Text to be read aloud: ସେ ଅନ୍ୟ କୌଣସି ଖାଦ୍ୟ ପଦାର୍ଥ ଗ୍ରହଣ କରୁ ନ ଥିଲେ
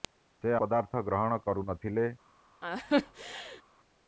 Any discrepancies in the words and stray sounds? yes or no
yes